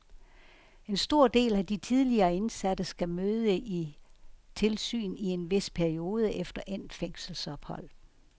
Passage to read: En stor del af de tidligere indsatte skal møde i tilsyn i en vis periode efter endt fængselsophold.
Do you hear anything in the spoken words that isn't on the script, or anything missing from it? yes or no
no